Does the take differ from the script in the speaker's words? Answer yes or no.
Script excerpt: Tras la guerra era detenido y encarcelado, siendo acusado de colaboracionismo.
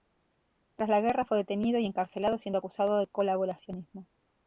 yes